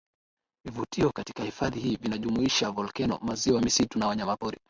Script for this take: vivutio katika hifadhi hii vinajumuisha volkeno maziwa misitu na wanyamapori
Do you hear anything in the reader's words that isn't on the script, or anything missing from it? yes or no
no